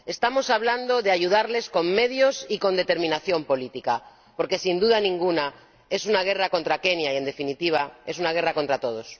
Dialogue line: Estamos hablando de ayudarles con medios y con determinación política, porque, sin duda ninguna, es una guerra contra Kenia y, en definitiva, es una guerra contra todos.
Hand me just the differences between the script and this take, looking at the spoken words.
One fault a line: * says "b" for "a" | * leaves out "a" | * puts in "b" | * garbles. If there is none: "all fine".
all fine